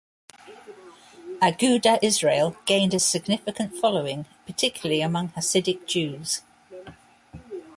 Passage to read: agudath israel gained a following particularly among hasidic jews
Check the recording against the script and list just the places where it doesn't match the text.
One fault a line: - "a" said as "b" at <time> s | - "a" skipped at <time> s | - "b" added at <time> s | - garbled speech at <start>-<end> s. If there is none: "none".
- "significant" added at 3.0 s